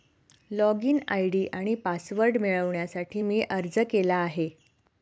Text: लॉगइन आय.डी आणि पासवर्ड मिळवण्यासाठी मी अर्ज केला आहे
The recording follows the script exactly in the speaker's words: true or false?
true